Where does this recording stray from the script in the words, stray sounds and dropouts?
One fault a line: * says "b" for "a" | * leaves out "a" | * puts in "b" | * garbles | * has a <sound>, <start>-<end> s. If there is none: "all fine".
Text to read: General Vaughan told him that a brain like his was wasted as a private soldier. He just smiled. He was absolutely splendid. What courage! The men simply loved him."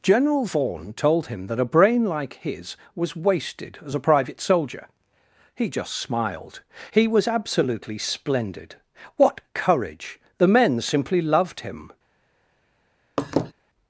* has a laugh, 13.2-13.5 s